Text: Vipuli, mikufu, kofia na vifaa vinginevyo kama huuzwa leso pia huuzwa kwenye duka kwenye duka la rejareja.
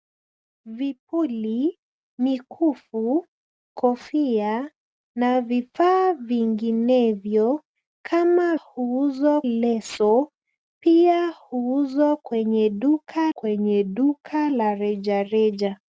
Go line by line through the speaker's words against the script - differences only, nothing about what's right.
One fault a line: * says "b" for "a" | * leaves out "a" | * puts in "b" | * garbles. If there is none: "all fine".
all fine